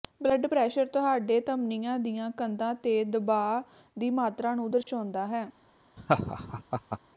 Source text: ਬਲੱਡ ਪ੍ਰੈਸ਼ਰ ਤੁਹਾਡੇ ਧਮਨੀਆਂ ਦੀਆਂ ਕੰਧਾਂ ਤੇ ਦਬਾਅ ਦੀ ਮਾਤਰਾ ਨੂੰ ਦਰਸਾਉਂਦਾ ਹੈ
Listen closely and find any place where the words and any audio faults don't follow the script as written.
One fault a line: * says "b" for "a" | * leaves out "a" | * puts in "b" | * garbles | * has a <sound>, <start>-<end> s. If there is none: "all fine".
* has a dropout, 4.8-4.9 s
* has a laugh, 6.0-7.0 s